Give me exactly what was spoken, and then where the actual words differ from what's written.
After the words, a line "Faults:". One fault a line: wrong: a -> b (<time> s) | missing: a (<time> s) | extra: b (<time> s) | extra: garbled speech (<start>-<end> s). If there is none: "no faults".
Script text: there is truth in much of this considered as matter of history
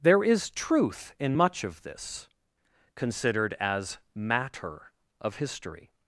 there is truth in much of this considered as matter of history
Faults:
no faults